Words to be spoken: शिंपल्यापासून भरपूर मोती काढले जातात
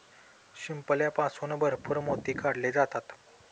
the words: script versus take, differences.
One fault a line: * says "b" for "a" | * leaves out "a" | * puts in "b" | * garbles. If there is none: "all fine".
all fine